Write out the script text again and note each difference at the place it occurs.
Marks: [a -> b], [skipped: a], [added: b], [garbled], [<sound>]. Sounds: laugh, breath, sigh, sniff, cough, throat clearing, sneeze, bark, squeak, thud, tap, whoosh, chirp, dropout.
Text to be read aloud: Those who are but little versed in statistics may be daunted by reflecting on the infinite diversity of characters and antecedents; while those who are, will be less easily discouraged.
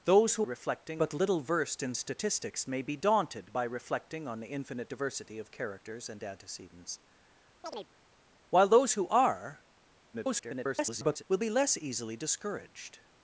Those who [are -> reflecting] but little versed in statistics may be daunted by reflecting on the infinite diversity of characters and antecedents; [chirp] while those who are, [garbled] will be less easily discouraged.